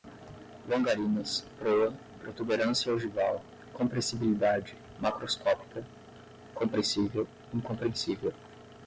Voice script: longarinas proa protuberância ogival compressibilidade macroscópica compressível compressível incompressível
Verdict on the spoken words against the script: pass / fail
fail